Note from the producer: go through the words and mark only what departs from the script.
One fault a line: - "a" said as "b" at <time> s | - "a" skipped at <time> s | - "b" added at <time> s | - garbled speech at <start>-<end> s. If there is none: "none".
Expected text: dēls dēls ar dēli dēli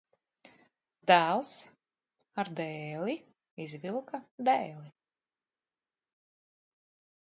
- "dēls" skipped at 1.5 s
- "izvilka" added at 3.6 s